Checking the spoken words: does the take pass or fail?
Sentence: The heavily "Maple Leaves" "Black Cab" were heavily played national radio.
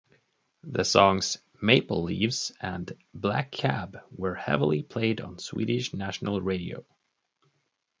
fail